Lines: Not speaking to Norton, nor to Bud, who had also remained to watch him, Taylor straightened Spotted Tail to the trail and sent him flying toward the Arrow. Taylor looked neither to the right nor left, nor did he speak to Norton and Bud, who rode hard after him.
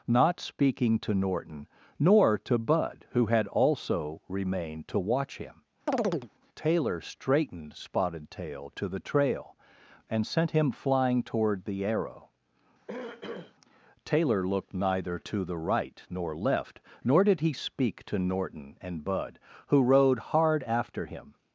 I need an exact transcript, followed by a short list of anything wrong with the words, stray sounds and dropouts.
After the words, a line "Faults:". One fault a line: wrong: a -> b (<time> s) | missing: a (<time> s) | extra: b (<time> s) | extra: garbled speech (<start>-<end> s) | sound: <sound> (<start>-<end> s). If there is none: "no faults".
Not speaking to Norton, nor to Bud, who had also remained to watch him, Taylor straightened Spotted Tail to the trail and sent him flying toward the Arrow. Taylor looked neither to the right nor left, nor did he speak to Norton and Bud, who rode hard after him.
Faults:
sound: chirp (5.9-6.3 s)
sound: throat clearing (12.9-13.6 s)